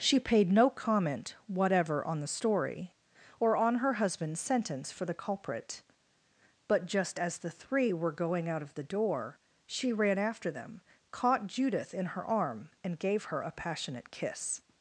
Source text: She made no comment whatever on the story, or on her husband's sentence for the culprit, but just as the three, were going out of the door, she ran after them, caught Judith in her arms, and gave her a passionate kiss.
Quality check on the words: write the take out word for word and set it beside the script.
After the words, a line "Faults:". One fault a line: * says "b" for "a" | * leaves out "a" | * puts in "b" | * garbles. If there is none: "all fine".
She paid no comment whatever on the story, or on her husband's sentence for the culprit, but just as the three, were going out of the door, she ran after them, caught Judith in her arm, and gave her a passionate kiss.
Faults:
* says "paid" for "made"
* says "arm" for "arms"